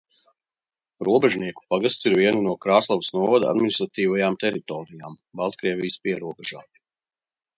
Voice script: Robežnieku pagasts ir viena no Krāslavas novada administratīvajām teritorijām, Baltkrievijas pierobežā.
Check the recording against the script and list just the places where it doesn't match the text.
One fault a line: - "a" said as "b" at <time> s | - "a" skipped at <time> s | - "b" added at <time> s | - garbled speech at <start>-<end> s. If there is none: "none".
none